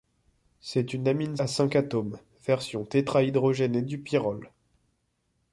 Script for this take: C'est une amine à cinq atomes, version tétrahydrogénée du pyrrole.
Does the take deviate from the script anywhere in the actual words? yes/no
no